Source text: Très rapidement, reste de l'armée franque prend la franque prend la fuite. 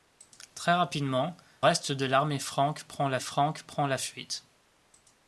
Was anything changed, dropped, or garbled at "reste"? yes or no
no